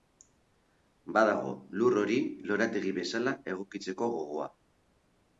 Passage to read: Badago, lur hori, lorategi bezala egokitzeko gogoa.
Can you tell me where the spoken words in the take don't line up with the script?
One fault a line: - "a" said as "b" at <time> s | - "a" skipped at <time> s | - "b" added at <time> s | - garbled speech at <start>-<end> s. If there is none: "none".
none